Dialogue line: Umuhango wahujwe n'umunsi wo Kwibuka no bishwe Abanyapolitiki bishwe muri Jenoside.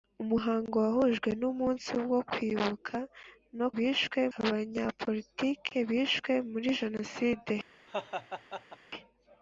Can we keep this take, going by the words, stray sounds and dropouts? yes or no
no